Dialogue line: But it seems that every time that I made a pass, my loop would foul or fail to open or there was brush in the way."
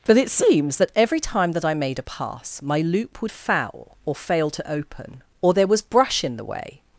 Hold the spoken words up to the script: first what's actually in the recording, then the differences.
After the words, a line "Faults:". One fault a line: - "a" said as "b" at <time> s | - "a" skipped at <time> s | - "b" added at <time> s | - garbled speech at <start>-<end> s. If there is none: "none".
But it seems that every time that I made a pass, my loop would foul or fail to open or there was brush in the way."
Faults:
none